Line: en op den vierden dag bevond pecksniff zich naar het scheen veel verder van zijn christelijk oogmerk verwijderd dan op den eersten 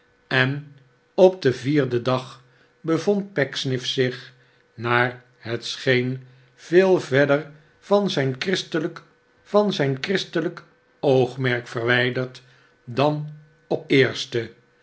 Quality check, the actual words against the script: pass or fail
fail